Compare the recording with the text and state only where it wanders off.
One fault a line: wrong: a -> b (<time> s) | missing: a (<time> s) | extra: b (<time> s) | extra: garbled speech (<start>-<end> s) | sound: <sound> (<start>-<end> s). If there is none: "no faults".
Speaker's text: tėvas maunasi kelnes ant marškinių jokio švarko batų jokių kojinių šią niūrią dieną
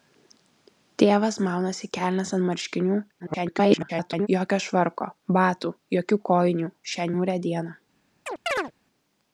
extra: garbled speech (3.2-4.3 s)
sound: chirp (8.3-8.7 s)